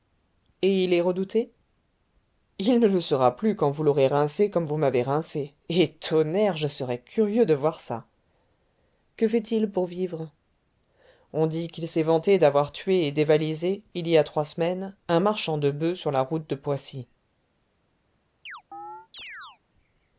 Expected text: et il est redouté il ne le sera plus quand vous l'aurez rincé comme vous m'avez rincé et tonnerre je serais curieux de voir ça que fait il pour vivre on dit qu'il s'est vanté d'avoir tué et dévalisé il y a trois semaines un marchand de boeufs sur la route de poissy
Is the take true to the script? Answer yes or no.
yes